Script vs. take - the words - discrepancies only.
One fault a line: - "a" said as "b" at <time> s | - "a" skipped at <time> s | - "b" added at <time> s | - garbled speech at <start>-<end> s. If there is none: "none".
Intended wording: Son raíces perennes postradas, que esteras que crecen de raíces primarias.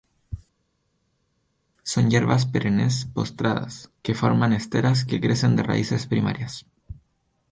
- "raíces" said as "hierbas" at 2.1 s
- "forman" added at 4.2 s